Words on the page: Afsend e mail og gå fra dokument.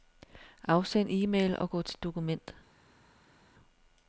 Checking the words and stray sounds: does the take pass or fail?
fail